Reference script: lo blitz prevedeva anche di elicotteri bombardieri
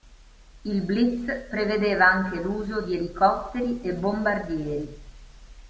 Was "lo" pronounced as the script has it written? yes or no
no